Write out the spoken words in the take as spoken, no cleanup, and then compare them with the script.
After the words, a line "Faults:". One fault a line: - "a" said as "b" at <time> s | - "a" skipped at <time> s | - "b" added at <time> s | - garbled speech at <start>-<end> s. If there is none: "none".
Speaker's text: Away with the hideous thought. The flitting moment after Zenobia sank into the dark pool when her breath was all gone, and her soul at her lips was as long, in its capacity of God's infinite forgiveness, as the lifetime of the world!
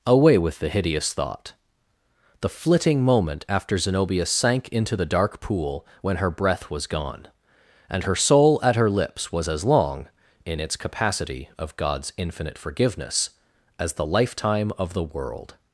Away with the hideous thought. The flitting moment after Zenobia sank into the dark pool when her breath was gone, and her soul at her lips was as long, in its capacity of God's infinite forgiveness, as the lifetime of the world!
Faults:
- "all" skipped at 6.9 s